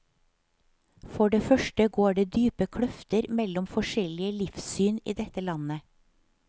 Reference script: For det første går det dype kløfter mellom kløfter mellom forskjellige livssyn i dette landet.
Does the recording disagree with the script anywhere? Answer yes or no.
yes